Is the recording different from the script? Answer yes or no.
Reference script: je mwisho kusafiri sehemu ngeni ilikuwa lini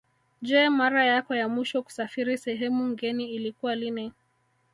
yes